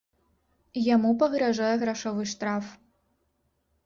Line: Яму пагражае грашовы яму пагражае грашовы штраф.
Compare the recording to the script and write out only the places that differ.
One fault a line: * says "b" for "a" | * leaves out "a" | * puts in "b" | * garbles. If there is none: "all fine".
* leaves out "яму пагражае грашовы"